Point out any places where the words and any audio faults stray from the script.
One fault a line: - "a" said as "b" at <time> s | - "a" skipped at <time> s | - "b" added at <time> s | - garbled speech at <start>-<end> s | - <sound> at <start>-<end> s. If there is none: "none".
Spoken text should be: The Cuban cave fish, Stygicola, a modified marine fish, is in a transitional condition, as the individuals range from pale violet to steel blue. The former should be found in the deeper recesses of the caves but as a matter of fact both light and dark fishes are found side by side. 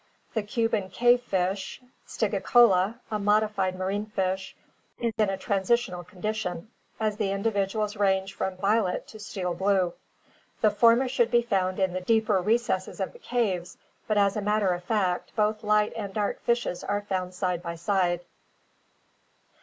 - "pale" skipped at 8.6 s